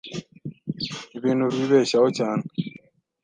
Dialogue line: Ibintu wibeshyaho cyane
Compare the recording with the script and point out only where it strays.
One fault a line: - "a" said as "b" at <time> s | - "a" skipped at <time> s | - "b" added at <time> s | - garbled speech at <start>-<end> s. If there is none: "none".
none